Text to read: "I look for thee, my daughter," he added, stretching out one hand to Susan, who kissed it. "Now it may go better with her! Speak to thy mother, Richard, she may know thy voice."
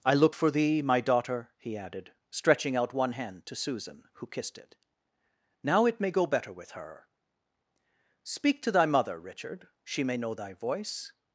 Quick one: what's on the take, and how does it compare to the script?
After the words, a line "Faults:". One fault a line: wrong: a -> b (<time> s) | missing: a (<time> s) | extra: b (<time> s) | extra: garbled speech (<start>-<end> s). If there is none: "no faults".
"I look for thee, my daughter," he added, stretching out one hand to Susan, who kissed it. "Now it may go better with her! Speak to thy mother, Richard, she may know thy voice."
Faults:
no faults